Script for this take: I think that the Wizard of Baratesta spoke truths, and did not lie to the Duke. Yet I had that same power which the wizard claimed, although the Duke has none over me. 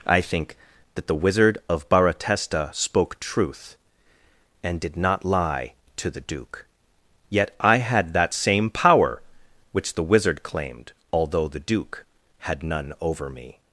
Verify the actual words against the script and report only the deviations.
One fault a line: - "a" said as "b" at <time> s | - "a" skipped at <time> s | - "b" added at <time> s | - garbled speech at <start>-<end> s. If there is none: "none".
- "truths" said as "truth" at 3.2 s
- "has" said as "had" at 12.4 s